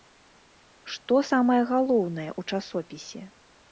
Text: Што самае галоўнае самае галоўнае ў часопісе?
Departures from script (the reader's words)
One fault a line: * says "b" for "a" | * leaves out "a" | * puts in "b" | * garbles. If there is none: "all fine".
* leaves out "самае галоўнае"